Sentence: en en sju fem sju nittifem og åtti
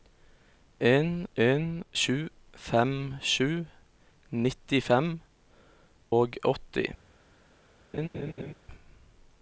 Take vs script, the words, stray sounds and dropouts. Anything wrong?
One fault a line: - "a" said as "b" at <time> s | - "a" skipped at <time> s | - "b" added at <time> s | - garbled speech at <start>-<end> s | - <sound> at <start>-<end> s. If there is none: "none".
- laugh at 7.9-8.5 s